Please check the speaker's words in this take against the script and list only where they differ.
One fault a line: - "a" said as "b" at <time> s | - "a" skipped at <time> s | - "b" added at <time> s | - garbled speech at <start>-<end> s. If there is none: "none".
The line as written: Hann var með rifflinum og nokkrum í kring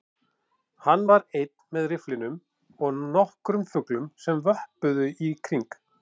- "einn" added at 1.4 s
- "fuglum sem vöppuðu" added at 3.7 s